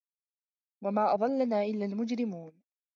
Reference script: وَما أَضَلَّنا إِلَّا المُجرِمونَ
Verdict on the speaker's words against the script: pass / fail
pass